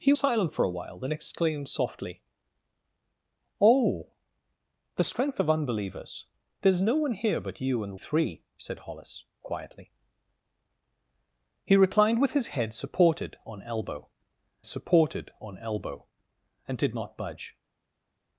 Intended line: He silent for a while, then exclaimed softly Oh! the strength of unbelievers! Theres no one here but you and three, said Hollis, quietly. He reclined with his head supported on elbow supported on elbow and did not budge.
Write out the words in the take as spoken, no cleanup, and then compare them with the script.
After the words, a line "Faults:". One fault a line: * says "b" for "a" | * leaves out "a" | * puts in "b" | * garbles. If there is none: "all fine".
He silent for a while, then exclaimed softly Oh! the strength of unbelievers! Theres no one here but you and three, said Hollis, quietly. He reclined with his head supported on elbow supported on elbow and did not budge.
Faults:
all fine